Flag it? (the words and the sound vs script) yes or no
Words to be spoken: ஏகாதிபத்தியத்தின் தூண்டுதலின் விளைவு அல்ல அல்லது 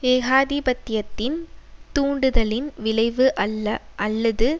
no